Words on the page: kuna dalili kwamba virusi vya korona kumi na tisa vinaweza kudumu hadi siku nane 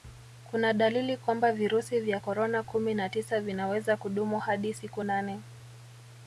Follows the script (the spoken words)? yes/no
yes